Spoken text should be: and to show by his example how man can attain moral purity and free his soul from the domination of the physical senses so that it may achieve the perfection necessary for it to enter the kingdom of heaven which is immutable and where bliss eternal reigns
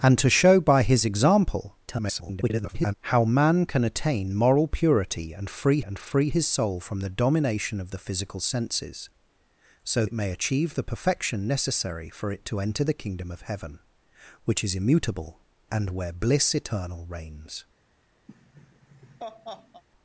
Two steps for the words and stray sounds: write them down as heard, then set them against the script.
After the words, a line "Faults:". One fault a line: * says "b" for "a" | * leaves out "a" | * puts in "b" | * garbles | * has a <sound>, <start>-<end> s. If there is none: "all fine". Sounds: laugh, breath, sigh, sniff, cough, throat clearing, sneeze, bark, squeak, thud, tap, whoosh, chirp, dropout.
and to show by his example [garbled] how man can attain moral purity and free and free his soul from the domination of the physical senses so it may achieve the perfection necessary for it to enter the kingdom of heaven which is immutable and where bliss eternal reigns
Faults:
* garbles
* puts in "and free"
* leaves out "that"
* has a laugh, 18.3-19.8 s